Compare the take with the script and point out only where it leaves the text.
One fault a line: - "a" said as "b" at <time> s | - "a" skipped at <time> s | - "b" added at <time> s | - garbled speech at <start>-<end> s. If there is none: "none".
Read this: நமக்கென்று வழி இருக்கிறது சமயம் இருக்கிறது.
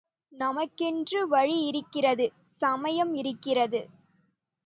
none